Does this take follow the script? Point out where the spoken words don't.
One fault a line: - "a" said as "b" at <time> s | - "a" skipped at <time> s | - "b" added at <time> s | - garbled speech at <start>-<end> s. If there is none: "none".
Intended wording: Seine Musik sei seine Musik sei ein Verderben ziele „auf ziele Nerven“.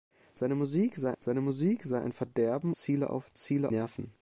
none